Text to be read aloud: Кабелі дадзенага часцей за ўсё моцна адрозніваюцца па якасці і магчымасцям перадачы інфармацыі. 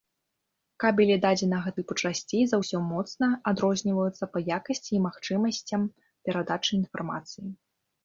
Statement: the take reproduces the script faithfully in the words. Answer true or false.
false